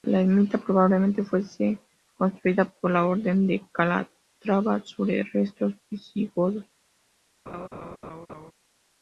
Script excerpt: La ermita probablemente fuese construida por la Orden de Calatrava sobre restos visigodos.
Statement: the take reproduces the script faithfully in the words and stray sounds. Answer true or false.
false